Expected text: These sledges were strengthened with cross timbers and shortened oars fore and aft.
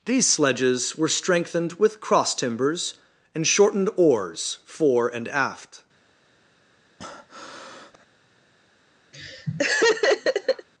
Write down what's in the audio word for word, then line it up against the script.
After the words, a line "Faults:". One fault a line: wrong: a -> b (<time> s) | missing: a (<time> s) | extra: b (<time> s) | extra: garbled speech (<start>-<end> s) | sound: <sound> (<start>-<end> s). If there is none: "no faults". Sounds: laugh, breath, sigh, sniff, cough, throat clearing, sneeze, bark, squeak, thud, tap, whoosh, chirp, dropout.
These sledges were strengthened with cross timbers and shortened oars fore and aft.
Faults:
sound: breath (7.0-8.1 s)
sound: laugh (9.1-10.7 s)